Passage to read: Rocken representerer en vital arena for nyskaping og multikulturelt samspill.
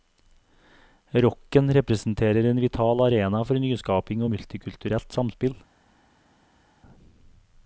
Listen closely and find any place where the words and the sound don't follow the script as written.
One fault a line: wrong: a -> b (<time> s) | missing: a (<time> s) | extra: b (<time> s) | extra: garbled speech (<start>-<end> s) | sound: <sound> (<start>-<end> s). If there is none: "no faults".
no faults